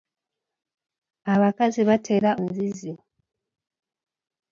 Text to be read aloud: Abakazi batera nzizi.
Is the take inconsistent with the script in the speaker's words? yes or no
no